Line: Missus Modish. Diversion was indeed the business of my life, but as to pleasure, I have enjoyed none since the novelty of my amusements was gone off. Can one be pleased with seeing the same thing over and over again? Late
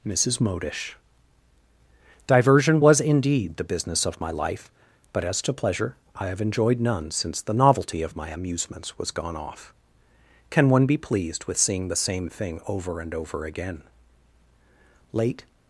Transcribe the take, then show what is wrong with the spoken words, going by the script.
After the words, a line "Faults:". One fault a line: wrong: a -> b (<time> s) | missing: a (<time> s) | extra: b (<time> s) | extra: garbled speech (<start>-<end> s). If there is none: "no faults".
Missus Modish. Diversion was indeed the business of my life, but as to pleasure, I have enjoyed none since the novelty of my amusements was gone off. Can one be pleased with seeing the same thing over and over again? Late
Faults:
no faults